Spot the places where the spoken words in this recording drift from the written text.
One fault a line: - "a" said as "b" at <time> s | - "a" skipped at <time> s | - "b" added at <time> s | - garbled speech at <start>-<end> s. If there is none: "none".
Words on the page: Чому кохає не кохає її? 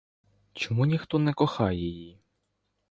- "кохає" said as "ніхто" at 0.8 s